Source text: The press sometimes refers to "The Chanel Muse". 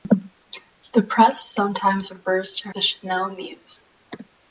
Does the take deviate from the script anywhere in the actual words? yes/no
no